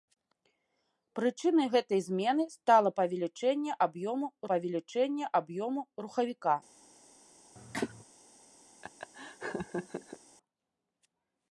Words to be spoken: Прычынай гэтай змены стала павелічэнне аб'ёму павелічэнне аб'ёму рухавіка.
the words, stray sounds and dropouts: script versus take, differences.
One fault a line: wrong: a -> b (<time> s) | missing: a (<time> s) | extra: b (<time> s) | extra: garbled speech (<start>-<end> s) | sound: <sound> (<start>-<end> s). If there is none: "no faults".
sound: cough (7.6-8.0 s)
sound: laugh (8.8-10.2 s)